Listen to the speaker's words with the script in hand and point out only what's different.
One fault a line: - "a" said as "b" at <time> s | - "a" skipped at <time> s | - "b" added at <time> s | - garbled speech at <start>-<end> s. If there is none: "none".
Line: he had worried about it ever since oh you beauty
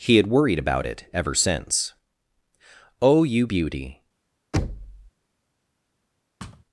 none